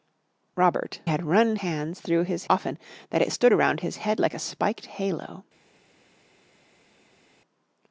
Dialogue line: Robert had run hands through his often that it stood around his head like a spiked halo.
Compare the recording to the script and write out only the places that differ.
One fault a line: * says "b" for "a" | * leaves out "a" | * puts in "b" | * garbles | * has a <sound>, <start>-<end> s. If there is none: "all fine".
all fine